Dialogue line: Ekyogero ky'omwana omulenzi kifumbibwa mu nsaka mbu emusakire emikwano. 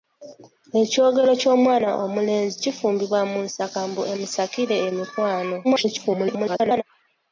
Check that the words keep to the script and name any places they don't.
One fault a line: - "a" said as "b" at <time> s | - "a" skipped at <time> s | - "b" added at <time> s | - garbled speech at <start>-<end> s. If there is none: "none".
- garbled speech at 5.6-6.8 s